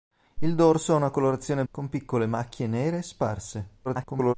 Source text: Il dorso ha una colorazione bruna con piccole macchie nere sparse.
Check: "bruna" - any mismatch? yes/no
yes